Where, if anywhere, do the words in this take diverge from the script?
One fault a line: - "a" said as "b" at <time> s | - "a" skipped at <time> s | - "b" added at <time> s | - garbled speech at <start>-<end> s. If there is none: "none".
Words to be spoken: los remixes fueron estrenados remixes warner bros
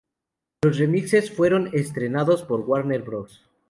- "remixes" said as "por" at 2.4 s